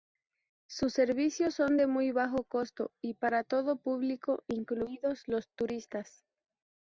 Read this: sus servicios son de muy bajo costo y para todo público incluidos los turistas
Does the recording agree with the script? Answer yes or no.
yes